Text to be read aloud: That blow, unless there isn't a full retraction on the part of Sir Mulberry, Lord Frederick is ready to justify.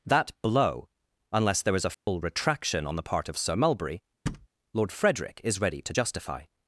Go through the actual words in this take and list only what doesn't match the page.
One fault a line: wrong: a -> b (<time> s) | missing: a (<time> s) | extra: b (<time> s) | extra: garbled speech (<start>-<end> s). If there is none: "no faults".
wrong: isn't -> is (1.8 s)